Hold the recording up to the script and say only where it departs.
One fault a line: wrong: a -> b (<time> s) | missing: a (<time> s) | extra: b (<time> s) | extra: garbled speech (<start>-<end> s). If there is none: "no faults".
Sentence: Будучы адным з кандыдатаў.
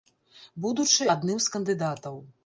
no faults